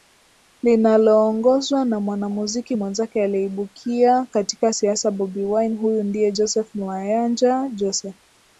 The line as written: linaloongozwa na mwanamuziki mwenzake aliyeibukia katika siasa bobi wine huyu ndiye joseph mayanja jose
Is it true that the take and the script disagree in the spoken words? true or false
false